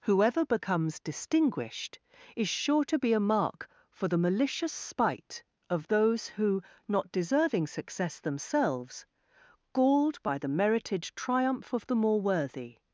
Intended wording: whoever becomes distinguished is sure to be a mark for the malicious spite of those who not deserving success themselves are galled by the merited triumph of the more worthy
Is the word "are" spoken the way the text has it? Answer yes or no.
no